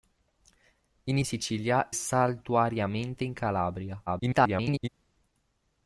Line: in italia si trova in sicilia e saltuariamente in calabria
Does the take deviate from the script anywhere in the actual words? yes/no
yes